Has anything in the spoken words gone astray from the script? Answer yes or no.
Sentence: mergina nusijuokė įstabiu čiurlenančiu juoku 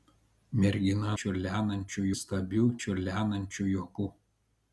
yes